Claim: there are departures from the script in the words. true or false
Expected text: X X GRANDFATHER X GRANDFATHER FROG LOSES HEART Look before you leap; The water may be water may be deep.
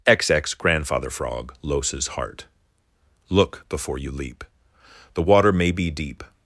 true